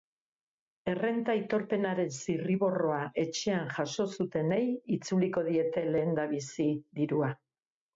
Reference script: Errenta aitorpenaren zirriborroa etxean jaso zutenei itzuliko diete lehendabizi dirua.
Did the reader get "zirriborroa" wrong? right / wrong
right